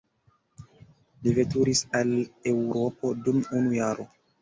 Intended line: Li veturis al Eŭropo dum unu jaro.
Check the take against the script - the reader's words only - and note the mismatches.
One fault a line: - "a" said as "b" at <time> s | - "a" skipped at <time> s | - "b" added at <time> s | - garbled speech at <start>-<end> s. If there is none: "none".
none